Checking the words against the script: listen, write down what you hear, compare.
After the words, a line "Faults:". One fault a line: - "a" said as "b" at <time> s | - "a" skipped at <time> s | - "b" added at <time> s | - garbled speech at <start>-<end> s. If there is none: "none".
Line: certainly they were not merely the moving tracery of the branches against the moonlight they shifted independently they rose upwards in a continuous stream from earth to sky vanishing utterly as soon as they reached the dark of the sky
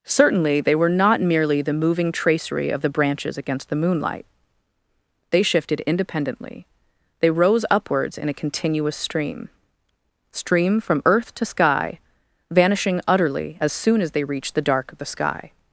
certainly they were not merely the moving tracery of the branches against the moonlight they shifted independently they rose upwards in a continuous stream stream from earth to sky vanishing utterly as soon as they reached the dark of the sky
Faults:
- "stream" added at 10.3 s